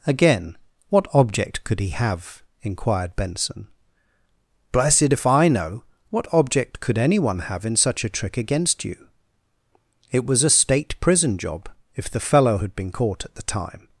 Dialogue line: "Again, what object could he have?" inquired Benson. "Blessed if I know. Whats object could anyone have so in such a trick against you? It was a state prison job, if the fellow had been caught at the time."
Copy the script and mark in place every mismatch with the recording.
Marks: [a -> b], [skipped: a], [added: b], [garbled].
"Again, what object could he have?" inquired Benson. "Blessed if I know. [Whats -> What] object could anyone have [skipped: so] in such a trick against you? It was a state prison job, if the fellow had been caught at the time."